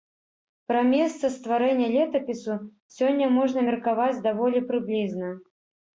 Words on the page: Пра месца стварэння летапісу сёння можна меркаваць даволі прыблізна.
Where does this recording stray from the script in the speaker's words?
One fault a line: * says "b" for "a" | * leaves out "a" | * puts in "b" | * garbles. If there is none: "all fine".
all fine